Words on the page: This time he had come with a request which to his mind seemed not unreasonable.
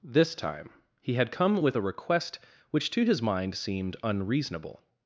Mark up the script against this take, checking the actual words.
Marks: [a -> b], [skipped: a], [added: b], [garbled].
This time he had come with a request which to his mind seemed [skipped: not] unreasonable.